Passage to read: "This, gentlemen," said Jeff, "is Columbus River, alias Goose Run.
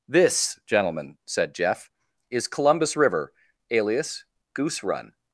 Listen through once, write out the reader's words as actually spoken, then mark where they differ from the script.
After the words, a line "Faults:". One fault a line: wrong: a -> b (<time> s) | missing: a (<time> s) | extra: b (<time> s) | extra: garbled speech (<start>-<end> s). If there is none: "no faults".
"This, gentlemen," said Jeff, "is Columbus River, alias Goose Run.
Faults:
no faults